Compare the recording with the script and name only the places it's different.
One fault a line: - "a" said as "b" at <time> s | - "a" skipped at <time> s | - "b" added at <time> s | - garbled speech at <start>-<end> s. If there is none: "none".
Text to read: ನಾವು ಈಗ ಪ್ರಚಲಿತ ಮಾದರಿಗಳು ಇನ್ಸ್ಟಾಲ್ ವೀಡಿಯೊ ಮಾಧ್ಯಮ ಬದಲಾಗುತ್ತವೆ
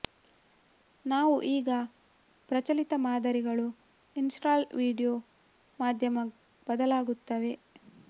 none